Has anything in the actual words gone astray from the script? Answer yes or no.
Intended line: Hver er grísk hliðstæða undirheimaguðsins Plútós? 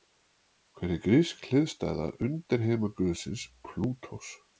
no